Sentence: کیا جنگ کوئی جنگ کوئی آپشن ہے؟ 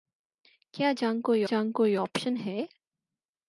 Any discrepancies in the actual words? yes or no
no